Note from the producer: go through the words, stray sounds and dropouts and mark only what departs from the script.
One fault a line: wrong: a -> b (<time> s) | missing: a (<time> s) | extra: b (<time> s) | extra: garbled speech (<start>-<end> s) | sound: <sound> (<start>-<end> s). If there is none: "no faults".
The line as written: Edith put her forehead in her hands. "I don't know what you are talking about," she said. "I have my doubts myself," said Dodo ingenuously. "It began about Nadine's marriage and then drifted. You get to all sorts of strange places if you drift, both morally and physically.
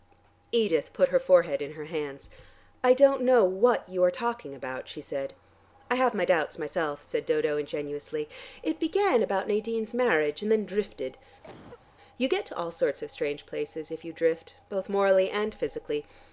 sound: cough (11.4-11.9 s)